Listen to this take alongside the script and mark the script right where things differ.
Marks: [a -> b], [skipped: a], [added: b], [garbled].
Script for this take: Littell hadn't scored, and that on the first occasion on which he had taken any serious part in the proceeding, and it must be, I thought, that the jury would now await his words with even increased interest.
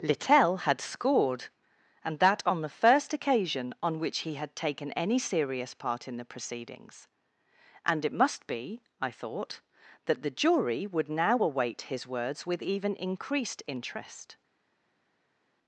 Littell [hadn't -> had] scored, and that on the first occasion on which he had taken any serious part in the [proceeding, -> proceedings] and it must be, I thought, that the jury would now await his words with even increased interest.